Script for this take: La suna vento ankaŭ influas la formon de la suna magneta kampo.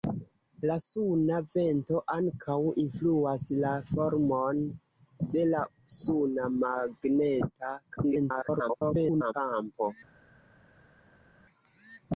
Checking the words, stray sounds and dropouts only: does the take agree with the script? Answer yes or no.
no